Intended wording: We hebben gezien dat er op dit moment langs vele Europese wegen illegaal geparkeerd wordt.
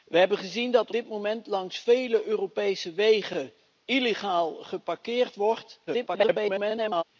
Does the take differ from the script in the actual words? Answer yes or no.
yes